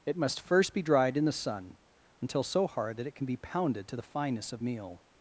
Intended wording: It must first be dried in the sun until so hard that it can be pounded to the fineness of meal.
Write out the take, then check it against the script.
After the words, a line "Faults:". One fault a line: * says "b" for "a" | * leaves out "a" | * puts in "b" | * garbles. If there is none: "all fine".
It must first be dried in the sun until so hard that it can be pounded to the fineness of meal.
Faults:
all fine